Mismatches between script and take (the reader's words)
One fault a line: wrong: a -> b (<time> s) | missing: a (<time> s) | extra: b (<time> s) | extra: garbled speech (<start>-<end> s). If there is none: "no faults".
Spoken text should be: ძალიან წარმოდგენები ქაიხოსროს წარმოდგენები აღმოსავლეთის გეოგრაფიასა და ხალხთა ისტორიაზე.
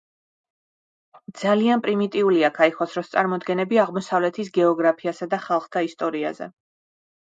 wrong: წარმოდგენები -> პრიმიტიულია (1.9 s)